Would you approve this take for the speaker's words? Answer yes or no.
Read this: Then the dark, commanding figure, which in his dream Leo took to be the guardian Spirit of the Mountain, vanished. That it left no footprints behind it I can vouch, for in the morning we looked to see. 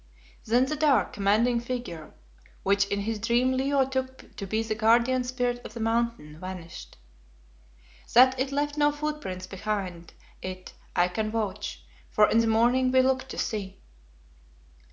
yes